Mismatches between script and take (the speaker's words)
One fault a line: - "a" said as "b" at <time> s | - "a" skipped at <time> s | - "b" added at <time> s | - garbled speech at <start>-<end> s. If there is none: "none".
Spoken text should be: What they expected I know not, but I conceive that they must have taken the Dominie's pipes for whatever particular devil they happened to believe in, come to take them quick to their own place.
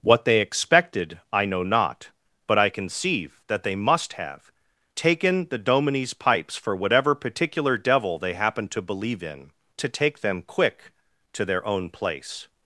- "come" skipped at 9.5 s